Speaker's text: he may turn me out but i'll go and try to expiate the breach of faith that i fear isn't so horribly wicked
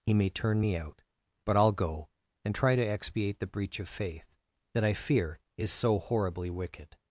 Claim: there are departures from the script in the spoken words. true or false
true